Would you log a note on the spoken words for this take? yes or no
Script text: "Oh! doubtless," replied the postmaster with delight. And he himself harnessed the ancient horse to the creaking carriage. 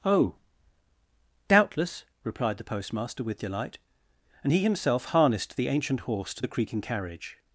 no